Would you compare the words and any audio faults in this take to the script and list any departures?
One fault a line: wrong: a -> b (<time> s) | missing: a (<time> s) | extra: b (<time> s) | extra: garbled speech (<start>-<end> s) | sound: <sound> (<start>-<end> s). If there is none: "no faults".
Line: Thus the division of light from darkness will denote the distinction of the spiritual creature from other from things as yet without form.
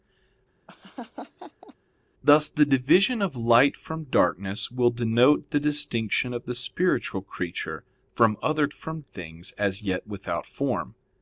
sound: laugh (0.7-1.7 s)